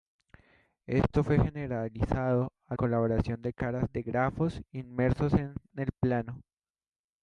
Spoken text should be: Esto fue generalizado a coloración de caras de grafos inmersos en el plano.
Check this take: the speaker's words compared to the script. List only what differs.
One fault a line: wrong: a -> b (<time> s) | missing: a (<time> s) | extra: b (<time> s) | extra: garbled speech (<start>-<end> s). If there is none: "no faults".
no faults